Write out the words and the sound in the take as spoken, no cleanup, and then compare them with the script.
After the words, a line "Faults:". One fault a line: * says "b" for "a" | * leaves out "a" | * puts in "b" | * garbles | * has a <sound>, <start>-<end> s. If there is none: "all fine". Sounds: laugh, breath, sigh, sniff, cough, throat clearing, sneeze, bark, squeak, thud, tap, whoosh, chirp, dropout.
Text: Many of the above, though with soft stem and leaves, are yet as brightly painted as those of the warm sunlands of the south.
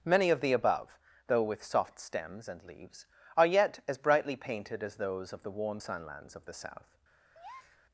Many of the above, though with soft stems and leaves, are yet as brightly painted as those of the warm sunlands of the south.
Faults:
* says "stems" for "stem"
* has a breath, 7.3-7.8 s